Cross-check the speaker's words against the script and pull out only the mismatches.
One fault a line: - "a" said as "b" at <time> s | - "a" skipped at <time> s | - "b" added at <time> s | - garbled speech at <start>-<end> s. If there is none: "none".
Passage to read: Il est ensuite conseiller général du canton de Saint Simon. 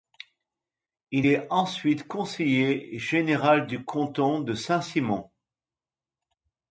none